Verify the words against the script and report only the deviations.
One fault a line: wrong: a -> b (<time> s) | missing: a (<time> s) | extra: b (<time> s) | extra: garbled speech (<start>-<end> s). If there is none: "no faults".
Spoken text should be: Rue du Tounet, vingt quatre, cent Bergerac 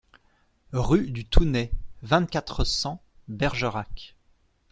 no faults